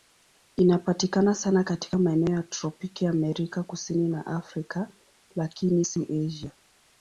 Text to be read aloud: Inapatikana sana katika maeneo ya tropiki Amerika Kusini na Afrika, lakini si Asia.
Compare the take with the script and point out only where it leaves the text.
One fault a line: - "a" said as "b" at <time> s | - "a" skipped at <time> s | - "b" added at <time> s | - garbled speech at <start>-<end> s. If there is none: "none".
none